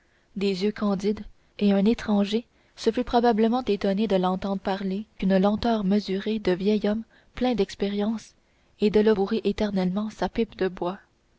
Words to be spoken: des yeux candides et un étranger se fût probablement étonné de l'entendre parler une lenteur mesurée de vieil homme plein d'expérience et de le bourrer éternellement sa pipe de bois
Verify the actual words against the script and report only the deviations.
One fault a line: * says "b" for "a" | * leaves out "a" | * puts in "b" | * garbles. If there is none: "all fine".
all fine